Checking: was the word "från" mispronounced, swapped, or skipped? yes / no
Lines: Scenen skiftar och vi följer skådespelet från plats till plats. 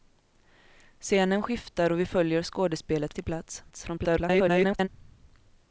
yes